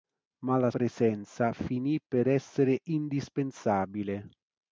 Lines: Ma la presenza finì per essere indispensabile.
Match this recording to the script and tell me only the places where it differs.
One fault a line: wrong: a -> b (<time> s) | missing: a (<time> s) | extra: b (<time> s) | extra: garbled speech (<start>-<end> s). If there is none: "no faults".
no faults